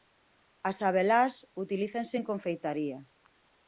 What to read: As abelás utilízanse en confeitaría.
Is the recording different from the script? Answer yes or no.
no